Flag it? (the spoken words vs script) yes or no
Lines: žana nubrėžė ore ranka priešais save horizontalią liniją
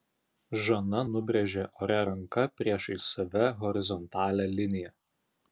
no